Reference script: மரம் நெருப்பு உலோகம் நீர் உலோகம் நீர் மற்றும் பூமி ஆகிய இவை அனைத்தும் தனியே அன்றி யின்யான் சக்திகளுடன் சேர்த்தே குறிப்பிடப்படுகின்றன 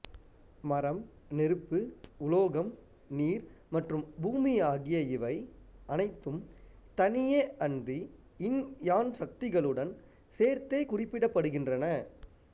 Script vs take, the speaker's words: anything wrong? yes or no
yes